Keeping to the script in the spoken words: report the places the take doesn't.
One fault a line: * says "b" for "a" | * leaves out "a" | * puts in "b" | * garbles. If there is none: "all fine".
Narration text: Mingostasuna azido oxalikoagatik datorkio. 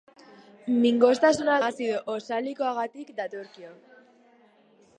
all fine